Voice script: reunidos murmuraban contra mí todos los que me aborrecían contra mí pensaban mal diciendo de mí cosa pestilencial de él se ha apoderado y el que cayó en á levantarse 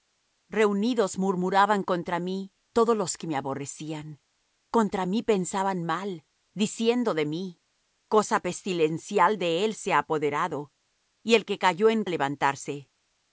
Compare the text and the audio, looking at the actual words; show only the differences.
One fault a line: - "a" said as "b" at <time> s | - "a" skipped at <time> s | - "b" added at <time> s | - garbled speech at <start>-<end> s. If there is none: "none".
none